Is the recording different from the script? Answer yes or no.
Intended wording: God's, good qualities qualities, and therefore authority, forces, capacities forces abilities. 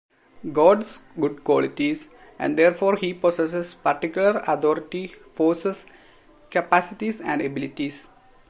yes